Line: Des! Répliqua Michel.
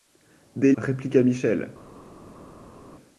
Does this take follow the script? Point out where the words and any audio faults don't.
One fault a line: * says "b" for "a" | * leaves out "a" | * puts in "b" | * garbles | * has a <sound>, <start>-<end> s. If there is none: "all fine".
all fine